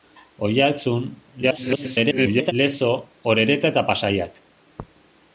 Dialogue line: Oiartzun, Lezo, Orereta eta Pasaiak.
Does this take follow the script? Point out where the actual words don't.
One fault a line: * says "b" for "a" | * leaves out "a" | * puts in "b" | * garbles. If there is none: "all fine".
* garbles